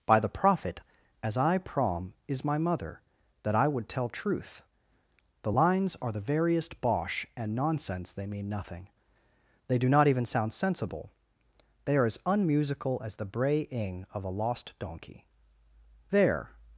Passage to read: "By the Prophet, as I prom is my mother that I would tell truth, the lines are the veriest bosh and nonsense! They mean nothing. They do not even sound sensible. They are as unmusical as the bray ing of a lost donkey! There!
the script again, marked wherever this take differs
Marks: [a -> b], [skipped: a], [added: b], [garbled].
"By the Prophet, as I prom is my mother that I would tell truth, the lines are the veriest bosh and nonsense! They mean nothing. They do not even sound sensible. They are as unmusical as the bray ing of a lost donkey! There!